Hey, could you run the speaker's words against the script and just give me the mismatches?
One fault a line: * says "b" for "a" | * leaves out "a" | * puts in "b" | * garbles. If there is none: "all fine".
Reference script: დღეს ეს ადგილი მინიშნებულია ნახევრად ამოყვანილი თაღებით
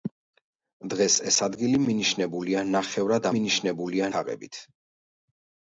* says "მინიშნებულია" for "ამოყვანილი"